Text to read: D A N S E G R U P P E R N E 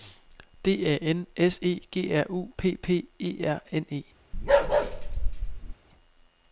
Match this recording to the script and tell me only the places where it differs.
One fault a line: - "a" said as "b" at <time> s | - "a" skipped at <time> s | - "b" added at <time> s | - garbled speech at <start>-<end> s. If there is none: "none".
none